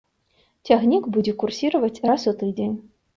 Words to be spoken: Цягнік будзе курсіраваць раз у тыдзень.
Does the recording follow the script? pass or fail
pass